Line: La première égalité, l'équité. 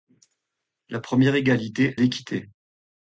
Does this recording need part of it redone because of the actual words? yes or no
no